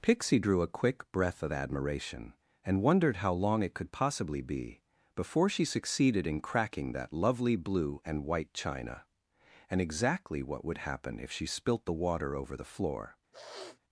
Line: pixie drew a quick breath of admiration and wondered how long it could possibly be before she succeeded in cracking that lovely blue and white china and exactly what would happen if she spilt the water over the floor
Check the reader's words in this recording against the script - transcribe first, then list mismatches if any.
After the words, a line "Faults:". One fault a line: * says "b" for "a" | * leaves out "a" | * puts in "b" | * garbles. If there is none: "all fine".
pixie drew a quick breath of admiration and wondered how long it could possibly be before she succeeded in cracking that lovely blue and white china and exactly what would happen if she spilt the water over the floor
Faults:
all fine